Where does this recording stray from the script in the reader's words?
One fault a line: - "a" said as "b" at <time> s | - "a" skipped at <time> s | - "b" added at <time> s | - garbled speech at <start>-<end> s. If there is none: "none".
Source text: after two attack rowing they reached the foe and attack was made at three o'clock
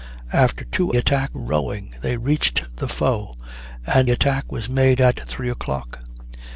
none